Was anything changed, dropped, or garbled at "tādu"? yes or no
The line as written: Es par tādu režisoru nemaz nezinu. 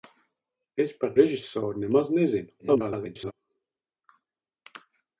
yes